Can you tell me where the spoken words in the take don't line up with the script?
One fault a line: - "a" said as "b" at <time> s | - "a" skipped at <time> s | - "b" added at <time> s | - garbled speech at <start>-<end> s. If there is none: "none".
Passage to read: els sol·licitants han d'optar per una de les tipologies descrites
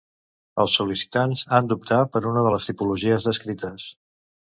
none